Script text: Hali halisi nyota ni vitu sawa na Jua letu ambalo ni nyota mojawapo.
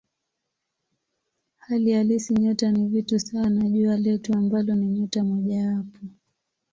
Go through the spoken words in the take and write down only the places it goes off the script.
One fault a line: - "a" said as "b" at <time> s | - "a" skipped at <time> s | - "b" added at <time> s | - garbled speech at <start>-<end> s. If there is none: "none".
none